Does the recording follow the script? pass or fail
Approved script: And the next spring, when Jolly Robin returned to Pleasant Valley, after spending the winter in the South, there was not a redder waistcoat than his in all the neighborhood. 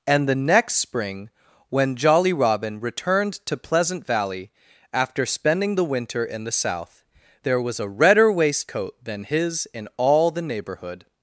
fail